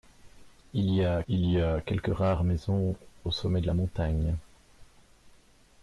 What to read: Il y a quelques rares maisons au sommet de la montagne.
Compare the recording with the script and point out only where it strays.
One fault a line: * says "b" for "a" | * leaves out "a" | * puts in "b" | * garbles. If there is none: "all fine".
* puts in "il y a"